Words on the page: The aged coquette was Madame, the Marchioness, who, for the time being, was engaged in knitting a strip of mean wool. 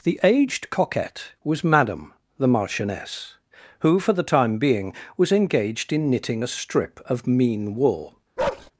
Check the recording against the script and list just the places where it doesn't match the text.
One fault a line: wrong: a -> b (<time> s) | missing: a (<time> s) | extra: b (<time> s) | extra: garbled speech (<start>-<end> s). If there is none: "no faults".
no faults